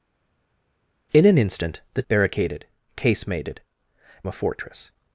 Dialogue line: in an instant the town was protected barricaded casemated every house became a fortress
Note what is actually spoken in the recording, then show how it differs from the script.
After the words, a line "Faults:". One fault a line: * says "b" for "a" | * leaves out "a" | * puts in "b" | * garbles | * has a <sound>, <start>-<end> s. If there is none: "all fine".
in an instant the barricaded casemated a fortress
Faults:
* leaves out "town was protected"
* leaves out "every house became"